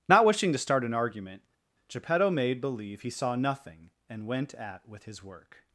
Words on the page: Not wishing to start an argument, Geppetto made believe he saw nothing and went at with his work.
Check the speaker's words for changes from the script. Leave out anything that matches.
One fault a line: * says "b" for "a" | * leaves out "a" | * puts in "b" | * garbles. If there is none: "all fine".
all fine